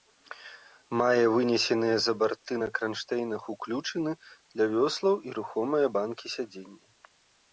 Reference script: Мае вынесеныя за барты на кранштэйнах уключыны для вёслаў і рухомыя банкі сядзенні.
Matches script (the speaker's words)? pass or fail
pass